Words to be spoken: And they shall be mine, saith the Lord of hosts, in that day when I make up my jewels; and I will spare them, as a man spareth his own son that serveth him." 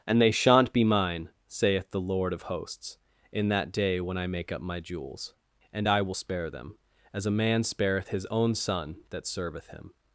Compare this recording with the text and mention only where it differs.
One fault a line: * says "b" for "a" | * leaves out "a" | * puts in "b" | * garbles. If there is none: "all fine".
* says "shan't" for "shall"